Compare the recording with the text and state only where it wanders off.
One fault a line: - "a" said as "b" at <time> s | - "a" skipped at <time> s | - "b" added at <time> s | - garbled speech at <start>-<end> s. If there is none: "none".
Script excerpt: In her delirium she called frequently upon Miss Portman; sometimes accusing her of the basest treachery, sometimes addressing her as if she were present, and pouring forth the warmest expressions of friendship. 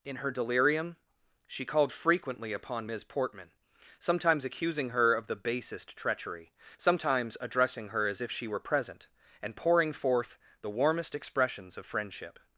none